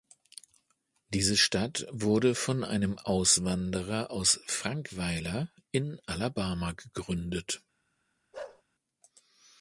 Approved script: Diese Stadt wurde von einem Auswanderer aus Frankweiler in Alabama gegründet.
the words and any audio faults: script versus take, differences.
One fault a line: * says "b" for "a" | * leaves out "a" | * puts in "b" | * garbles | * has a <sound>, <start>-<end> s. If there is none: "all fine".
* has a bark, 8.3-8.6 s